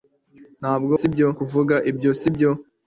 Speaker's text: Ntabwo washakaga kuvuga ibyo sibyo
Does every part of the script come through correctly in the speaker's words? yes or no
no